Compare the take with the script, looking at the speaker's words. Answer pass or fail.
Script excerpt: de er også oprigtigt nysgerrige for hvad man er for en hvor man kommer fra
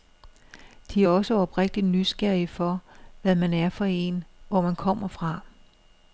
pass